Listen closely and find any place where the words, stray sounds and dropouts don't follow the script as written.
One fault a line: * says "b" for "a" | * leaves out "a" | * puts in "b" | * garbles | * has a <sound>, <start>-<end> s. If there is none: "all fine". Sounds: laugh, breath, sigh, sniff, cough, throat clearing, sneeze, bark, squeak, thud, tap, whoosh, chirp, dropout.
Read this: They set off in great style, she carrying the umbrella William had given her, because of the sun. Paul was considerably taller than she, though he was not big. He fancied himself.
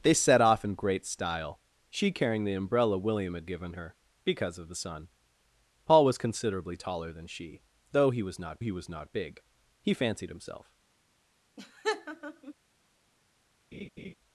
* puts in "he was not"
* has a laugh, 11.6-12.5 s
* has a laugh, 13.7-14.1 s